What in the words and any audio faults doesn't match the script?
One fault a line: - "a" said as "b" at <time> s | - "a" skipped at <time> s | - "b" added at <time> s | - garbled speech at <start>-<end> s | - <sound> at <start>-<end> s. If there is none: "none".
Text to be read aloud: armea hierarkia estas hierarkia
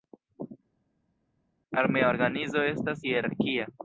- "hierarkia" said as "organizo" at 2.1 s